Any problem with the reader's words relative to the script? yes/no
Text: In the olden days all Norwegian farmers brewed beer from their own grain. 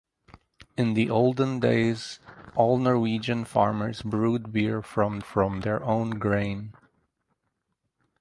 yes